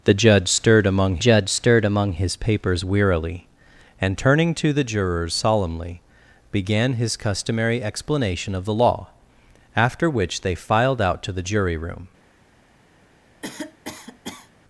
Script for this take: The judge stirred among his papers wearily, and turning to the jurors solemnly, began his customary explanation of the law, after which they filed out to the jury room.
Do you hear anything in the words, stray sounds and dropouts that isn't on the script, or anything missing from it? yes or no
yes